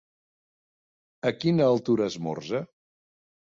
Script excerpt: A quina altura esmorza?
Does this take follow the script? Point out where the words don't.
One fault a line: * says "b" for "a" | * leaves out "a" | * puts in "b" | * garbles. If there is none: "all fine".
all fine